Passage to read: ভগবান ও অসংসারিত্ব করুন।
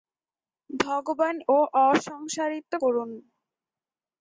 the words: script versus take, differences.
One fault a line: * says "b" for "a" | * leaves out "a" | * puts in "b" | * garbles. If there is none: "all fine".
all fine